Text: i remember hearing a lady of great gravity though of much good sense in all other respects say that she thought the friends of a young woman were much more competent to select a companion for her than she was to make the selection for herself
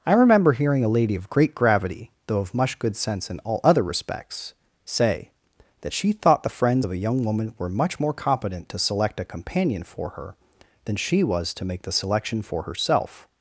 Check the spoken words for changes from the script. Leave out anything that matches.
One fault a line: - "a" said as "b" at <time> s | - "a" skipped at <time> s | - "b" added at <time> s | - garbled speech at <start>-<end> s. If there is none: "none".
none